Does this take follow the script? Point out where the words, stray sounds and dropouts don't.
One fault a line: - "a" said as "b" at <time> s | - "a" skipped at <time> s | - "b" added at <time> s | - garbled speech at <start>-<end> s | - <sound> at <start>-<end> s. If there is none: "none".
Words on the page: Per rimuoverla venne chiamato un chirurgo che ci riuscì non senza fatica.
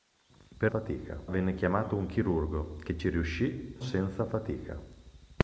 - "rimuoverla" said as "fatica" at 0.6 s
- "non" skipped at 3.8 s